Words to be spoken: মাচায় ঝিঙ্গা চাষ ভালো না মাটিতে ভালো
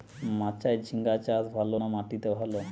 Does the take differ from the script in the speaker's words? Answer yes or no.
no